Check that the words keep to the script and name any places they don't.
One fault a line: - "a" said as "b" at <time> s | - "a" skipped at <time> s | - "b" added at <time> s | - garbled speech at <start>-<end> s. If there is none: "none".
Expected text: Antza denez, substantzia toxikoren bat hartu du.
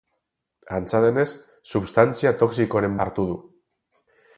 - "bat" skipped at 3.0 s